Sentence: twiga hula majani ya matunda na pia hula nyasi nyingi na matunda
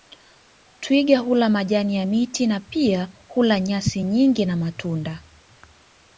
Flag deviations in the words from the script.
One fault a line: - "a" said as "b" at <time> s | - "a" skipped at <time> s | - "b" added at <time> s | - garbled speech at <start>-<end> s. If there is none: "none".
- "matunda" said as "miti" at 2.0 s